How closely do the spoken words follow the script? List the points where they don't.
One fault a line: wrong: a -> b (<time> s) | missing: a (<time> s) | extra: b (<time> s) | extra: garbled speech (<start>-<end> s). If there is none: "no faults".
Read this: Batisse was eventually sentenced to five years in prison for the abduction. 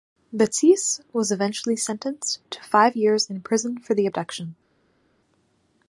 no faults